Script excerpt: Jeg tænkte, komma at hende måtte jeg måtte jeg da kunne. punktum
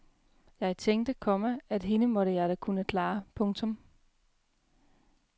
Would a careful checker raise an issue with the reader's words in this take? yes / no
yes